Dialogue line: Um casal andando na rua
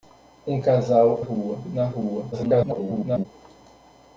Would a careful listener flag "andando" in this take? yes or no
yes